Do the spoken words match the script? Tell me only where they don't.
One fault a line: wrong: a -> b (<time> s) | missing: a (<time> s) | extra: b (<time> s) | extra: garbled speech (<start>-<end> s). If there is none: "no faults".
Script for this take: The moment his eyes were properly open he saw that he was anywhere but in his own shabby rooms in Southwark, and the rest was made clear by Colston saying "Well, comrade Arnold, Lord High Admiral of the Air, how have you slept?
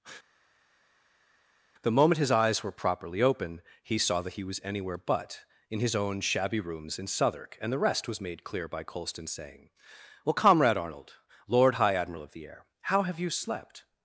no faults